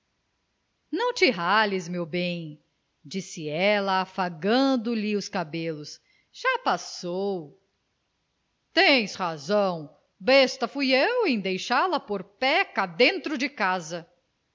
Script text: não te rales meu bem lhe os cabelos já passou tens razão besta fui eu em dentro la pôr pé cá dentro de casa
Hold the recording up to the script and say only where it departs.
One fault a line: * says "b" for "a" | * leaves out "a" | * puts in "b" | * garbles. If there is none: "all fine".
* puts in "disse ela afagando"
* says "deixá" for "dentro"